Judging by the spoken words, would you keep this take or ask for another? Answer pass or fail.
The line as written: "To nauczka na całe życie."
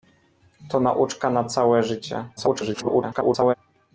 fail